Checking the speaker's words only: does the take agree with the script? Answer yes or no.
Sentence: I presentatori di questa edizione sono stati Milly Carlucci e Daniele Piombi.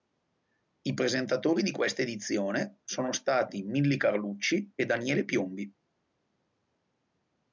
yes